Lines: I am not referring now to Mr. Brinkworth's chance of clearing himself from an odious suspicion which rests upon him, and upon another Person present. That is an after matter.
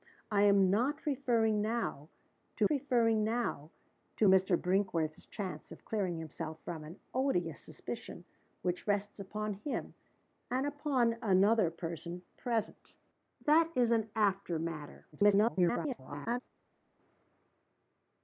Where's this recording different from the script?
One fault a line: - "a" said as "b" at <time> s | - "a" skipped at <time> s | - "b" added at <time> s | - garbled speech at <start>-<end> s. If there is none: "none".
- "referring now to" added at 2.7 s
- garbled speech at 15.1-16.4 s